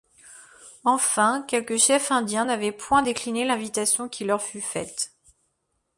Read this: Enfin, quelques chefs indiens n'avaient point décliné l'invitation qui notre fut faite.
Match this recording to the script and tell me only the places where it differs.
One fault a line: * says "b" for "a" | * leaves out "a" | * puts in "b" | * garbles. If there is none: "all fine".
* says "leur" for "notre"